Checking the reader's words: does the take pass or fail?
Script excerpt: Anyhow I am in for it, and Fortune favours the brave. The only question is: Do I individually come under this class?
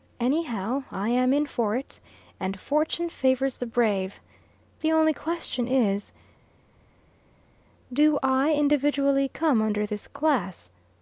pass